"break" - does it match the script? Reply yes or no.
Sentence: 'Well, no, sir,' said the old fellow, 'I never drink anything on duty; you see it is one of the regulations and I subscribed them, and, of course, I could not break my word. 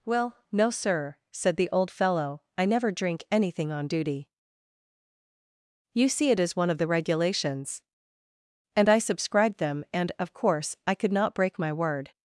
yes